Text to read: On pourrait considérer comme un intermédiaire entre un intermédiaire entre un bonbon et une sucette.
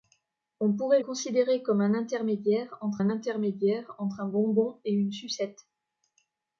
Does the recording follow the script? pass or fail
pass